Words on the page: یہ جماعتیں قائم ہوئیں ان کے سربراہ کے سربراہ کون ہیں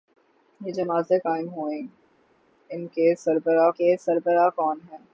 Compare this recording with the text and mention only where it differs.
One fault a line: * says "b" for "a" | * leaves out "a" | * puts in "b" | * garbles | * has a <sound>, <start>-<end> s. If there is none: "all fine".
all fine